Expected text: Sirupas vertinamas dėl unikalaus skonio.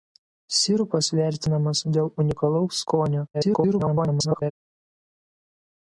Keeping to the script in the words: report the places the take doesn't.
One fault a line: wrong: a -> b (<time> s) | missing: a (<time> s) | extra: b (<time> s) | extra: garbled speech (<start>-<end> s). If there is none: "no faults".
extra: garbled speech (3.3-4.5 s)